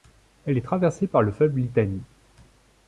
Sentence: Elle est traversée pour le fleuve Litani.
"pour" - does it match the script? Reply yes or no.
no